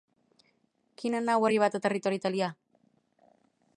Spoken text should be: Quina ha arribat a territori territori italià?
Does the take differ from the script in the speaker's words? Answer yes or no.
yes